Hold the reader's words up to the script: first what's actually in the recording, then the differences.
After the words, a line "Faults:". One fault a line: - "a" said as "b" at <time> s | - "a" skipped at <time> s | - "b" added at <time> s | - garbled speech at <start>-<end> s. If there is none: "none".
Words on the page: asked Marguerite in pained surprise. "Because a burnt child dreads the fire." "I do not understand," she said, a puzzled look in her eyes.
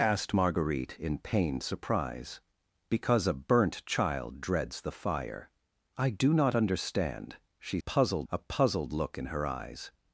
asked Marguerite in pained surprise. "Because a burnt child dreads the fire." "I do not understand," she puzzled, a puzzled look in her eyes.
Faults:
- "said" said as "puzzled" at 7.8 s